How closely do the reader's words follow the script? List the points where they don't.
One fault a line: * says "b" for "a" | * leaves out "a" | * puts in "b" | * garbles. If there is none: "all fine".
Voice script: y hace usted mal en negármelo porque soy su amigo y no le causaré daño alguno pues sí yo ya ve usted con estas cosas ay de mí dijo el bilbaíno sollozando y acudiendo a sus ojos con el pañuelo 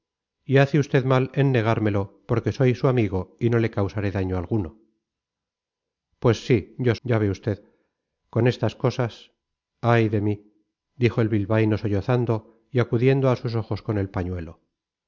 all fine